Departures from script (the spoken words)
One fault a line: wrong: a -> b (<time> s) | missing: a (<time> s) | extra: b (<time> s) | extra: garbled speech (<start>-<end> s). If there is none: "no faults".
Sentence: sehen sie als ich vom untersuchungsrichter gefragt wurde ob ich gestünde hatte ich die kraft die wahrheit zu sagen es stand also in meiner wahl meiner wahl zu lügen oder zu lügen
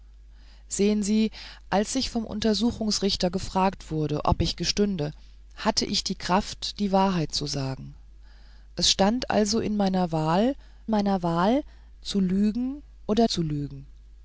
no faults